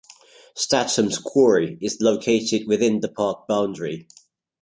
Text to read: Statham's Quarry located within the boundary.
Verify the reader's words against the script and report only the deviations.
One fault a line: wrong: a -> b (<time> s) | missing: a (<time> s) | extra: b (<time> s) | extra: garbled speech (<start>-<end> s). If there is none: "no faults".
extra: is (1.8 s)
extra: park (3.1 s)